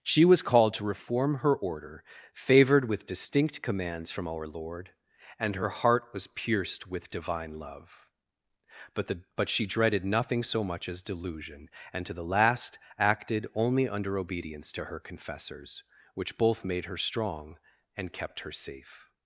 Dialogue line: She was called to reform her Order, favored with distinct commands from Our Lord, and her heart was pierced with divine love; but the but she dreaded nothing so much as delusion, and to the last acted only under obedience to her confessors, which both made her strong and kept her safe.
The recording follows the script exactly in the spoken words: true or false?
true